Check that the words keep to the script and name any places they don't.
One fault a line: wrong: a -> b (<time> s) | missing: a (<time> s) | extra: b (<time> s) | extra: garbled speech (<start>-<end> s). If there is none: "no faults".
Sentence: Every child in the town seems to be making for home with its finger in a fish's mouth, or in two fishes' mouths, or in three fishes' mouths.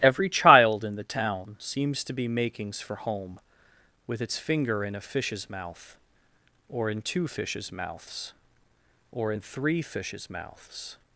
wrong: making -> makings (2.3 s)